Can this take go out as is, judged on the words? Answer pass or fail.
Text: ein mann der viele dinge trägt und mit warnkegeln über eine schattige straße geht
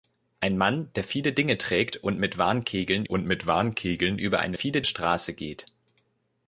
fail